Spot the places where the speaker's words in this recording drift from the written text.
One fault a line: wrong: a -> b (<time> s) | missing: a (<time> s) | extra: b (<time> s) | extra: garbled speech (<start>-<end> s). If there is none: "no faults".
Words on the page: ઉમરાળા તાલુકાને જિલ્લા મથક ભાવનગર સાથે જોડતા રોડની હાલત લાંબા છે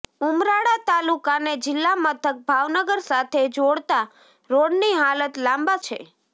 no faults